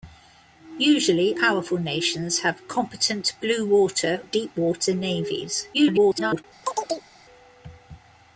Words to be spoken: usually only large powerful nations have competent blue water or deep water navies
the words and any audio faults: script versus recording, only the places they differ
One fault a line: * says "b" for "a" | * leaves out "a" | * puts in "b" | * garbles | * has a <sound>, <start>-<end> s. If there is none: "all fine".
* leaves out "only large"
* leaves out "or"
* garbles
* has a chirp, 6.6-7.1 s